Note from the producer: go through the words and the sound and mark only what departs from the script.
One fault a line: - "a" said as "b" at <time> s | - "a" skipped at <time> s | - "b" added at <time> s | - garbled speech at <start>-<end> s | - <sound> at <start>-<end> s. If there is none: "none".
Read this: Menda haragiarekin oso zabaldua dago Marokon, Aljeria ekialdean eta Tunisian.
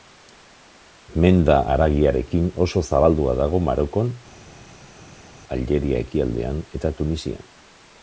none